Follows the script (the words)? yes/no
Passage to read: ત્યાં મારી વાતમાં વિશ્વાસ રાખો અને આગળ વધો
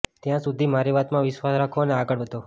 no